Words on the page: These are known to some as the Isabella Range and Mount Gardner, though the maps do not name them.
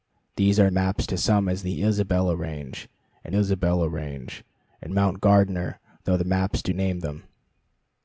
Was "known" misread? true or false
true